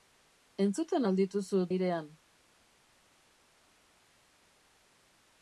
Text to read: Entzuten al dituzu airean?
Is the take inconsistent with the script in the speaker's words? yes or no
no